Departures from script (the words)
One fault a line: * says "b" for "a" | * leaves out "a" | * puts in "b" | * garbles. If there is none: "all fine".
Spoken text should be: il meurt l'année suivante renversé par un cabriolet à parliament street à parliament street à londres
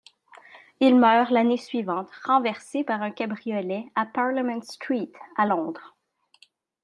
* leaves out "parliament street à"